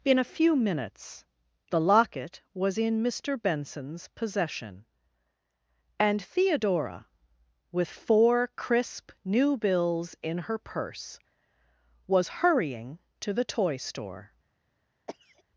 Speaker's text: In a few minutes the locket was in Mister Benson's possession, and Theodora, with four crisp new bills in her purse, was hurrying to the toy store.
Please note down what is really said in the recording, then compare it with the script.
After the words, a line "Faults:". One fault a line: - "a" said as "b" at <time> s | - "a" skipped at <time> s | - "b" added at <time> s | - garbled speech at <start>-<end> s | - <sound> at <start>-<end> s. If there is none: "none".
In a few minutes the locket was in Mister Benson's possession, and Theodora, with four crisp new bills in her purse, was hurrying to the toy store.
Faults:
- cough at 15.1-15.4 s